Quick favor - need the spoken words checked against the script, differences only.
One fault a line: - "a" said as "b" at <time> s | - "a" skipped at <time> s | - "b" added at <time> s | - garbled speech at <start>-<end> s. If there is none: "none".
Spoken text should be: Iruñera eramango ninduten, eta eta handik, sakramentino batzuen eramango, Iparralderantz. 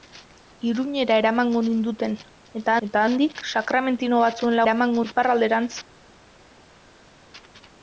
none